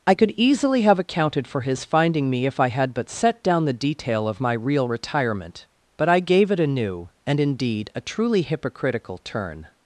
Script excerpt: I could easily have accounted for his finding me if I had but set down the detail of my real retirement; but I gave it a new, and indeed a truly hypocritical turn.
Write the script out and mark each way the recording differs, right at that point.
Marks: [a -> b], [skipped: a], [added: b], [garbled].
I could easily have accounted for his finding me if I had but set down the detail of my real retirement; but I gave it a new, and indeed a truly hypocritical turn.